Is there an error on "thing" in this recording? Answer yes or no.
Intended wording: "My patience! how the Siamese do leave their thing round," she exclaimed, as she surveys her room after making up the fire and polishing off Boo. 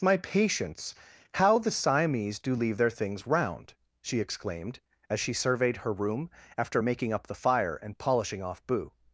yes